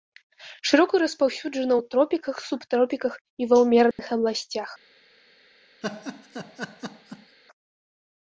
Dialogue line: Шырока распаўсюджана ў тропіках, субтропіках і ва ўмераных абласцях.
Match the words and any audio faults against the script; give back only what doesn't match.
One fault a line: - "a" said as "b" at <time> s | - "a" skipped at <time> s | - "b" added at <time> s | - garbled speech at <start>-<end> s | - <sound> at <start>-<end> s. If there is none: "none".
- dropout at 3.9-4.0 s
- laugh at 5.8-7.4 s